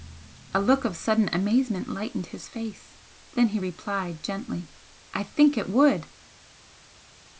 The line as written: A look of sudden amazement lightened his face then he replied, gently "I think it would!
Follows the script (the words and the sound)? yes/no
yes